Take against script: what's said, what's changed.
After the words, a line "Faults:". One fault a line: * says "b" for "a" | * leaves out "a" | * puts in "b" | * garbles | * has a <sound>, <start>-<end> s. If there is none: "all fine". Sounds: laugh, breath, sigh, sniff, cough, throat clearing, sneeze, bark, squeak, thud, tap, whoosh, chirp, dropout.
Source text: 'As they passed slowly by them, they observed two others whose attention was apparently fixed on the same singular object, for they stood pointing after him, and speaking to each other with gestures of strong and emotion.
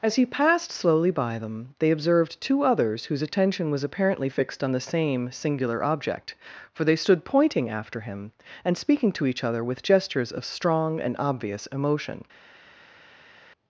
'As he passed slowly by them, they observed two others whose attention was apparently fixed on the same singular object, for they stood pointing after him, and speaking to each other with gestures of strong and obvious emotion.
Faults:
* says "he" for "they"
* puts in "obvious"